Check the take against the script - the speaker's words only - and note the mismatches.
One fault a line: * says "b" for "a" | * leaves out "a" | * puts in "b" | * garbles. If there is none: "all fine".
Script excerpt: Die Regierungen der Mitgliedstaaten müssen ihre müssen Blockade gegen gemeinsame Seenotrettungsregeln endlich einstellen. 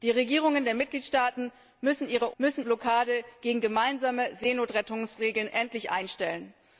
all fine